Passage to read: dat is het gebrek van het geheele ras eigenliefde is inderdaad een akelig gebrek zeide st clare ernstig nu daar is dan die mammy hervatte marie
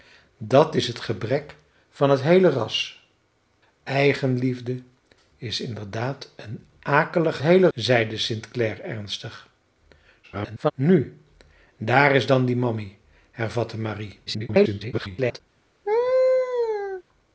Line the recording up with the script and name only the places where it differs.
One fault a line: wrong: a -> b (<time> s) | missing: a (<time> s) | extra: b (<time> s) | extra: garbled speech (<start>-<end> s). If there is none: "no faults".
wrong: gebrek -> geheele (7.4 s)
extra: garbled speech (10.2-10.7 s)
extra: garbled speech (14.3-15.4 s)